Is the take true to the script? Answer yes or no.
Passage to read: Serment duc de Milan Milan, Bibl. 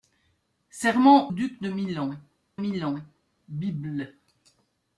yes